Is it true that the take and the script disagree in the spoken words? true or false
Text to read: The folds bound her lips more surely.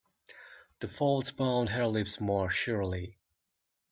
false